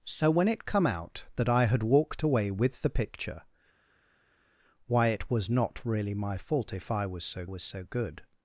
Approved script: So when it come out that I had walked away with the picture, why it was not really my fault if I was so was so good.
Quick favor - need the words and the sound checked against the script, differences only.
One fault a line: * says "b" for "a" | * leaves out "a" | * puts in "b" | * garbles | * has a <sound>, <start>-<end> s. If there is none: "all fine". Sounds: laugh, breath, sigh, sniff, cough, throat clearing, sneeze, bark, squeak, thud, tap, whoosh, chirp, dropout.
all fine